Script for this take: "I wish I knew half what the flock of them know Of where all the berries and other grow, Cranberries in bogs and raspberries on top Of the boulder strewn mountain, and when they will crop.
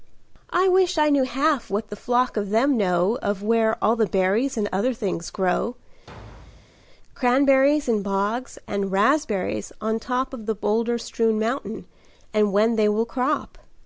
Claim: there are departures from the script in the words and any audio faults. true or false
true